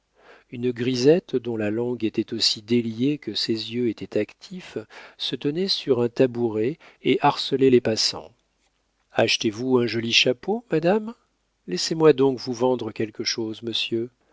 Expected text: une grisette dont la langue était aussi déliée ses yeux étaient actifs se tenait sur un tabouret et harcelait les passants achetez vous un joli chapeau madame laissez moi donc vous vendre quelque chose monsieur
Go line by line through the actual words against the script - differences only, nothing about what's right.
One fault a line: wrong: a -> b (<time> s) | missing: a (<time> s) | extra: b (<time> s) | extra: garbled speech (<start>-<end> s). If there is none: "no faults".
extra: que (3.2 s)